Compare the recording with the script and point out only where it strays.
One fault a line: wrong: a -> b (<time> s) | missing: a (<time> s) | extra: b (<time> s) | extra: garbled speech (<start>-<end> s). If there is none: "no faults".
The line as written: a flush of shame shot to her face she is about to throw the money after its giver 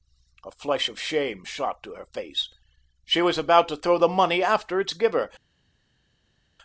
wrong: is -> was (3.2 s)